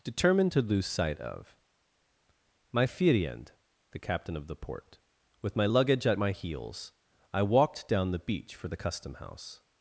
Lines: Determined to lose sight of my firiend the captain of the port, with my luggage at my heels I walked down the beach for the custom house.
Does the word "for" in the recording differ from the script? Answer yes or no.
no